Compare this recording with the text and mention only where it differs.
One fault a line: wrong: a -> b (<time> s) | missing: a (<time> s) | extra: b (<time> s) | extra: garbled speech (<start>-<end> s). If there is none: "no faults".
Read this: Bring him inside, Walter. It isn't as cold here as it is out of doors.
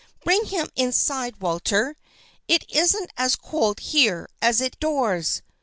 missing: is out of (4.8 s)